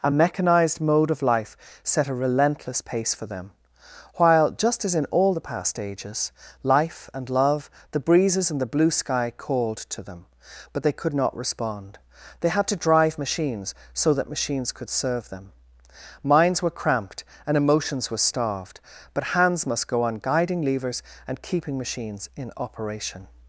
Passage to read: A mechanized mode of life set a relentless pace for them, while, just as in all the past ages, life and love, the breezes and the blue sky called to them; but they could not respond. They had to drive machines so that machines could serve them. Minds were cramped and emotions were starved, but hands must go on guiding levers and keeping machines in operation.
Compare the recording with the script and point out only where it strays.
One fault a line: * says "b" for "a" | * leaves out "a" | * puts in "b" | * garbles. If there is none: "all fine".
all fine